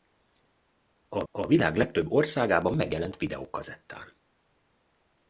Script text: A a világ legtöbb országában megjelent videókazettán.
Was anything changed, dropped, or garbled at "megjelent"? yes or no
no